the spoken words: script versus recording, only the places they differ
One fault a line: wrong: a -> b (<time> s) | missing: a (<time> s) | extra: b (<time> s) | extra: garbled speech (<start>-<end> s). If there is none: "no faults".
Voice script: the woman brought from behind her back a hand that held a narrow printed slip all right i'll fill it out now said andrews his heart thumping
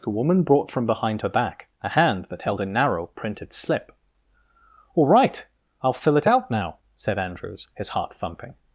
no faults